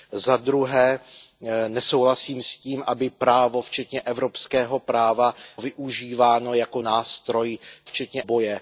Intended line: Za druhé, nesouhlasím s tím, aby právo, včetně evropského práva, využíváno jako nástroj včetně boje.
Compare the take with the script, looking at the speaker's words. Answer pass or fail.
pass